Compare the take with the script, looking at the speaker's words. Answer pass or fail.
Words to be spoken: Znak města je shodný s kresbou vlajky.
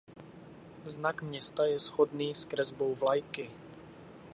pass